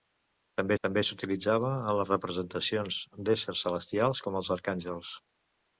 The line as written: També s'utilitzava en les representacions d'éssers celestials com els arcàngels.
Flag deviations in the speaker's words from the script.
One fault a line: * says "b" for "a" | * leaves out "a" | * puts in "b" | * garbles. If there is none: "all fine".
* puts in "també"